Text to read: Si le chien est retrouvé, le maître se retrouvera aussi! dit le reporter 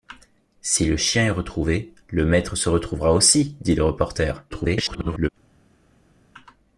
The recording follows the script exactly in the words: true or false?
false